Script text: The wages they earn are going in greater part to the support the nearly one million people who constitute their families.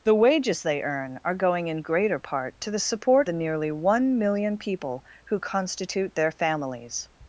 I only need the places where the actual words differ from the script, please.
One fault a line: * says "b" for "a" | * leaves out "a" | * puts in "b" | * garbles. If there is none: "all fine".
all fine